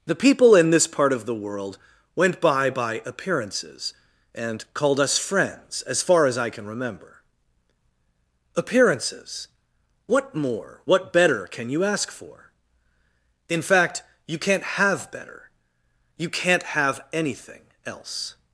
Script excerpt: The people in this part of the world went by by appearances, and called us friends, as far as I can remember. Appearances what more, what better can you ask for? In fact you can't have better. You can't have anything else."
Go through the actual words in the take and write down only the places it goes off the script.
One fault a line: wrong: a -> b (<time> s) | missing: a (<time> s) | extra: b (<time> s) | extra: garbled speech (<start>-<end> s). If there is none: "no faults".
no faults